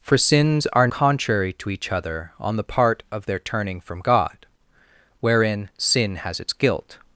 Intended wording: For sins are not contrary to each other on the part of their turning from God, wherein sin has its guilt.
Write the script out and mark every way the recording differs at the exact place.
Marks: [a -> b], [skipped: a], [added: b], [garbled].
For sins are [skipped: not] contrary to each other on the part of their turning from God, wherein sin has its guilt.